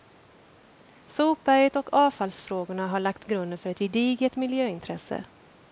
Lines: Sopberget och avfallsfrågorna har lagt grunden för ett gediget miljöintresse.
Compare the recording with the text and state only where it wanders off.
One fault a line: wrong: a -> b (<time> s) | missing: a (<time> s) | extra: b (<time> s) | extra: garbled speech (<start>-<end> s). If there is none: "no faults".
no faults